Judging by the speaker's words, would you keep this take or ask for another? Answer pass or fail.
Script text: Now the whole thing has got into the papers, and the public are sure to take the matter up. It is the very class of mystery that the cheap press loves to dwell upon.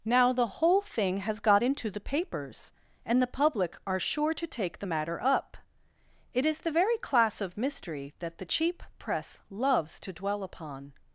pass